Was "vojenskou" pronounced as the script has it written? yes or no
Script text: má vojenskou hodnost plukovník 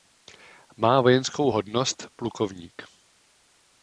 yes